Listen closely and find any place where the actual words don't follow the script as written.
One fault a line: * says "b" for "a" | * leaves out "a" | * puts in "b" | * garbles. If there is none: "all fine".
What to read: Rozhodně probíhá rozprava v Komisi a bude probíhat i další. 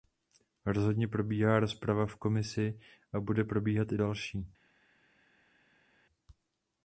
all fine